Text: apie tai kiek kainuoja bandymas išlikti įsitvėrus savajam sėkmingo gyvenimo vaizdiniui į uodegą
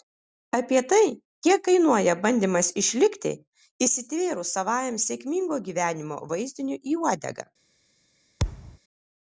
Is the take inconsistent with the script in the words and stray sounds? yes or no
yes